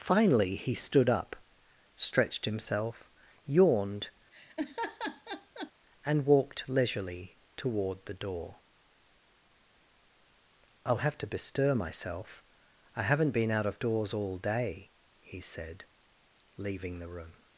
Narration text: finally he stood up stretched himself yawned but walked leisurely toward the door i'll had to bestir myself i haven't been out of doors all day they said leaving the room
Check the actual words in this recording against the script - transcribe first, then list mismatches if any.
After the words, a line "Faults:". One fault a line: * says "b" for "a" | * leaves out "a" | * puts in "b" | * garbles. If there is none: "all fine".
finally he stood up stretched himself yawned and walked leisurely toward the door i'll have to bestir myself i haven't been out of doors all day he said leaving the room
Faults:
* says "and" for "but"
* says "have" for "had"
* says "he" for "they"